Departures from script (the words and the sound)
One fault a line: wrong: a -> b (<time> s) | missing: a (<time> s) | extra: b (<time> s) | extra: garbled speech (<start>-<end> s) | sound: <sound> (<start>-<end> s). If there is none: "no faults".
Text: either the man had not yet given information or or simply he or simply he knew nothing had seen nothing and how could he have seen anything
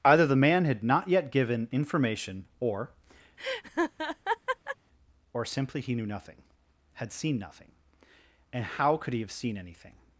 sound: laugh (3.4-4.8 s)
missing: or simply he (6.0 s)